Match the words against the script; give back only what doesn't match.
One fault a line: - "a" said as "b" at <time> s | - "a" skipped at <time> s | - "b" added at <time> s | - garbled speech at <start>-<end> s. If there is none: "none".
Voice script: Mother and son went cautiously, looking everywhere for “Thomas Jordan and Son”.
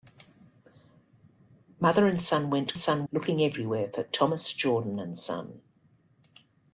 - "cautiously" said as "son" at 2.7 s